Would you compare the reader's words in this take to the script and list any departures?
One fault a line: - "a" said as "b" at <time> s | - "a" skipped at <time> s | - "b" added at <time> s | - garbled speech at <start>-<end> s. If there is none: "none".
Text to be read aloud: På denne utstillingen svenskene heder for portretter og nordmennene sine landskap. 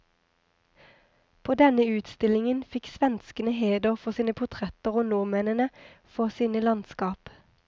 - "fikk" added at 2.7 s
- "sine" added at 4.2 s
- "for" added at 6.2 s